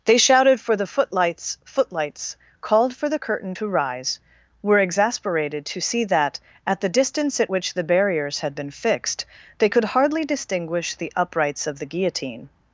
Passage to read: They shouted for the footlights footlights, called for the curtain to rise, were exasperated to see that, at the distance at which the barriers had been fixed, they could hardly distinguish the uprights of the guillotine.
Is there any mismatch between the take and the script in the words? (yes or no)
no